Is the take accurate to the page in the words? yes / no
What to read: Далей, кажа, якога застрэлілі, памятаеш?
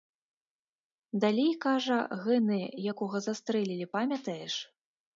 no